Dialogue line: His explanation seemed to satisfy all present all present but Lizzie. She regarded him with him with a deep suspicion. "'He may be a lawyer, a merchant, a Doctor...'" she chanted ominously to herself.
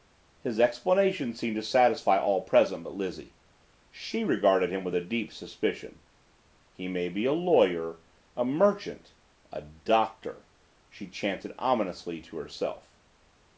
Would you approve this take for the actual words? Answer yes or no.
no